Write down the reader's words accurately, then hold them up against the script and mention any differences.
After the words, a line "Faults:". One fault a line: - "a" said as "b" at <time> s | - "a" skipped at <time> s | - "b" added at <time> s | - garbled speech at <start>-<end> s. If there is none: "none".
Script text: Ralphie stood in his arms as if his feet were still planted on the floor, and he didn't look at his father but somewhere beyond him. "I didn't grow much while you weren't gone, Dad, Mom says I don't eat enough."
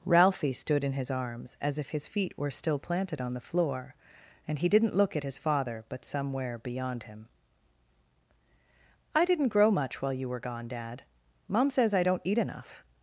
Ralphie stood in his arms as if his feet were still planted on the floor, and he didn't look at his father but somewhere beyond him. "I didn't grow much while you were gone, Dad, Mom says I don't eat enough."
Faults:
- "weren't" said as "were" at 10.3 s